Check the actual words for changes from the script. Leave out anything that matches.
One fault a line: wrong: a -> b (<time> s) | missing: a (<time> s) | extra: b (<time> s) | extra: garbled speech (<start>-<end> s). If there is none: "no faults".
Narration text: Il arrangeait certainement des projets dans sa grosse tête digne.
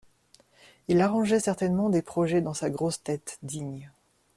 no faults